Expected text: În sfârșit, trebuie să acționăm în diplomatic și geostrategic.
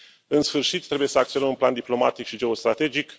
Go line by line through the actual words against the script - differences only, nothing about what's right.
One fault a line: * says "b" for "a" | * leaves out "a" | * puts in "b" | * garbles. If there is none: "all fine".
* puts in "plan"